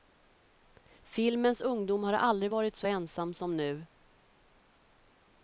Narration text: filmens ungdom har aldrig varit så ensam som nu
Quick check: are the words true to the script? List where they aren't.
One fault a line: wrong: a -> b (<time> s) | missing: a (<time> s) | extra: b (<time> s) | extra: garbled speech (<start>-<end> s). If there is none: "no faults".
no faults